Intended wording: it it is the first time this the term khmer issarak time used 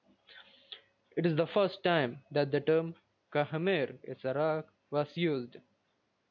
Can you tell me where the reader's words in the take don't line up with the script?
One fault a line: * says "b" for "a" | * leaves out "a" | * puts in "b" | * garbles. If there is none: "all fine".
* leaves out "it"
* says "that" for "this"
* says "was" for "time"